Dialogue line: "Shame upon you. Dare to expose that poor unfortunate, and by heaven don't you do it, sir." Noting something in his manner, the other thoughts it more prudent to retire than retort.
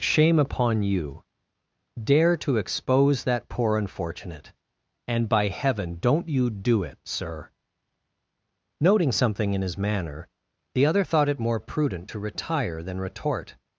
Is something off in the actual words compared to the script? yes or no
yes